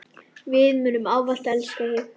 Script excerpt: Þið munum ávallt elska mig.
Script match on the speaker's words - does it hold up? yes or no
no